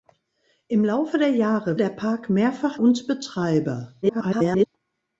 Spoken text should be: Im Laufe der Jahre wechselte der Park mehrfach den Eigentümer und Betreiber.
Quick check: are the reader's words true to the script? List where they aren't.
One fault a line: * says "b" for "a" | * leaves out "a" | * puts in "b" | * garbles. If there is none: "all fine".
* leaves out "wechselte"
* leaves out "den Eigentümer"
* garbles